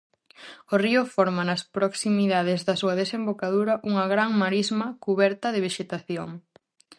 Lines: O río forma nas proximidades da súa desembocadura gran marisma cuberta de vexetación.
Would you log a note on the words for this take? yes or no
yes